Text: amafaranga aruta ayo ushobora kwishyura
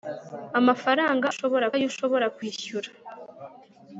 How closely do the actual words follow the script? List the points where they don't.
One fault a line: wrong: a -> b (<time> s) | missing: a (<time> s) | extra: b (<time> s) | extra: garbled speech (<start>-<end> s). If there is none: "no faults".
wrong: aruta -> ushobora (1.3 s)